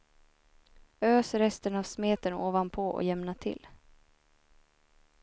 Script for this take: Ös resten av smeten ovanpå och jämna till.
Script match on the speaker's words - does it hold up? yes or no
yes